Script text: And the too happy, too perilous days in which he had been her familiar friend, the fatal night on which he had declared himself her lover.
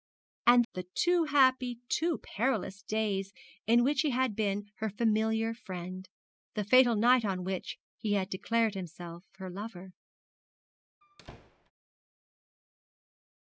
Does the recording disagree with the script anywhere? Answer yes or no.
no